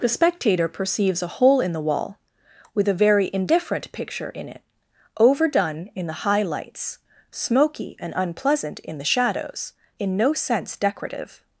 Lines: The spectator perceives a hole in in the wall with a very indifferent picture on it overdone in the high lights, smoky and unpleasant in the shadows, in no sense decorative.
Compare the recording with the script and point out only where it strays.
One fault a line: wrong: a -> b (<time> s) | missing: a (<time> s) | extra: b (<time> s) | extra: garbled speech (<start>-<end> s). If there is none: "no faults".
missing: in (1.7 s)
wrong: on -> in (4.3 s)